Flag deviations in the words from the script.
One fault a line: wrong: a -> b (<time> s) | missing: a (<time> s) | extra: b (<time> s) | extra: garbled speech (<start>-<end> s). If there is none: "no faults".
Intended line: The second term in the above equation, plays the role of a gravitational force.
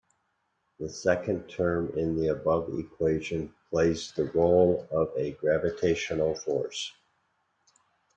no faults